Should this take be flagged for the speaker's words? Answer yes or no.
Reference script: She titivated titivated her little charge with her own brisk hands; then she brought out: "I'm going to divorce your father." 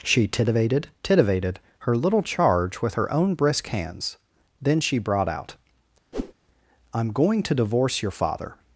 no